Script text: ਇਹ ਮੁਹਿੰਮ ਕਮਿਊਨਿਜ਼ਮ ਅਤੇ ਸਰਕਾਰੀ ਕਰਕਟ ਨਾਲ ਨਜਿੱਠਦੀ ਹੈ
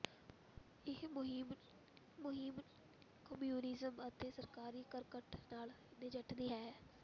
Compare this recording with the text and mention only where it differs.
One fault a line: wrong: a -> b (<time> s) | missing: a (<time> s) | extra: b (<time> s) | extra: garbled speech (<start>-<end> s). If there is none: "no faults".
extra: ਮੁਹਿੰਮ (2.2 s)